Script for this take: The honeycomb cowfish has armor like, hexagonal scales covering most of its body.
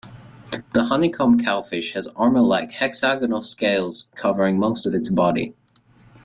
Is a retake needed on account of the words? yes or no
no